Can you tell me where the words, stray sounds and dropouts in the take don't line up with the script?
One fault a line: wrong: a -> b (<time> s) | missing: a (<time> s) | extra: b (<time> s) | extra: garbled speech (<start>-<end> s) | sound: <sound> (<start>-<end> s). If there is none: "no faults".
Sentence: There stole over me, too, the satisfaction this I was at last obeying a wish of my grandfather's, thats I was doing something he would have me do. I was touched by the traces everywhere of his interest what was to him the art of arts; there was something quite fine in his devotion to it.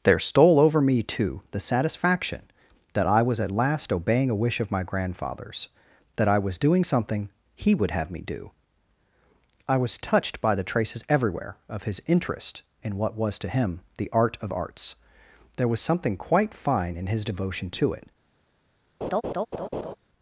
wrong: this -> that (2.9 s)
wrong: thats -> that (6.2 s)
extra: in (12.8 s)
sound: laugh (19.0-19.9 s)